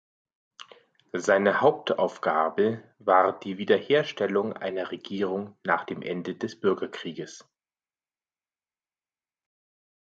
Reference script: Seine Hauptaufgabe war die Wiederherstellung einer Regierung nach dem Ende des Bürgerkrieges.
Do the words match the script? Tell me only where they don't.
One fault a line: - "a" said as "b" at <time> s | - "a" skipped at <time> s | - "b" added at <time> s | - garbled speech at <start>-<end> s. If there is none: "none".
none